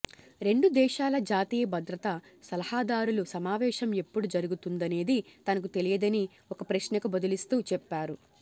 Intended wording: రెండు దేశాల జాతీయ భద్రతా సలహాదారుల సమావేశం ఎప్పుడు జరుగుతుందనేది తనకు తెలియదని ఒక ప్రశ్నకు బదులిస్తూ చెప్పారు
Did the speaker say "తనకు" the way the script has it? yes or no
yes